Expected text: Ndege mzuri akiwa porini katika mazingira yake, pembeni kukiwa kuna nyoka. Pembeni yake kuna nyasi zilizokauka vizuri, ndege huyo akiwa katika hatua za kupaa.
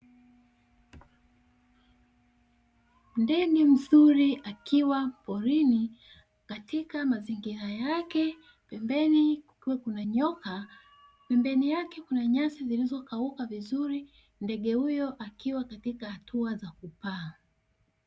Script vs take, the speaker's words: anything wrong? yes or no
no